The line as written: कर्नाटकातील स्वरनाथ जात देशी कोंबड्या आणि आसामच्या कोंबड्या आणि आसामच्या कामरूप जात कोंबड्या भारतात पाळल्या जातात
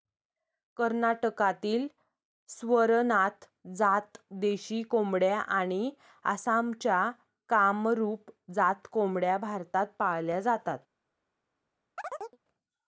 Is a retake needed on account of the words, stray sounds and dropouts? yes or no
yes